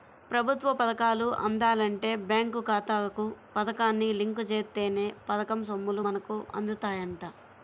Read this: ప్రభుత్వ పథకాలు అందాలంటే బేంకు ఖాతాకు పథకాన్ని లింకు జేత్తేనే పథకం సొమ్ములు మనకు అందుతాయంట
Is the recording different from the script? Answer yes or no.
no